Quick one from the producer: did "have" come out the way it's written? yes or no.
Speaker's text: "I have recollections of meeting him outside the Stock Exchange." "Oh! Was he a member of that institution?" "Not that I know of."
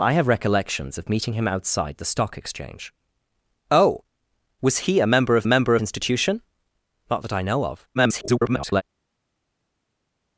yes